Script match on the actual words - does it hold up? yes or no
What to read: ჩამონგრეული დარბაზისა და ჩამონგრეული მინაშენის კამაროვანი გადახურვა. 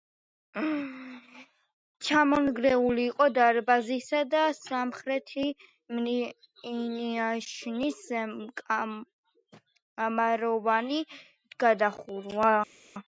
no